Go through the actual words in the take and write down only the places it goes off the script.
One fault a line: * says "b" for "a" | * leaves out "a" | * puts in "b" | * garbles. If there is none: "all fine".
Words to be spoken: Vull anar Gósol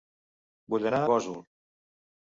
all fine